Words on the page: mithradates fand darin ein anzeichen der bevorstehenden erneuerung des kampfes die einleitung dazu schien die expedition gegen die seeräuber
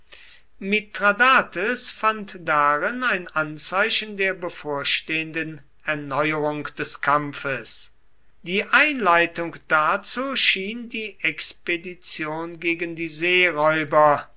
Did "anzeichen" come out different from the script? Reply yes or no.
no